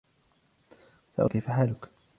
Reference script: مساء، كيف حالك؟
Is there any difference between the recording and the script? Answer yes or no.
no